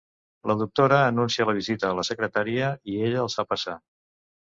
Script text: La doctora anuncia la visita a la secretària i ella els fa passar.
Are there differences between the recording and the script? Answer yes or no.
no